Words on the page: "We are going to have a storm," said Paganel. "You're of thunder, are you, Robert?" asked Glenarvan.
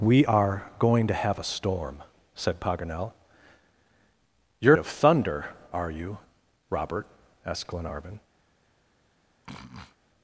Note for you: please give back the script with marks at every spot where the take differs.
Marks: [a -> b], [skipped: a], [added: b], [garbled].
"We are going to have a storm," said Paganel. "You're of thunder, are you, Robert?" asked Glenarvan.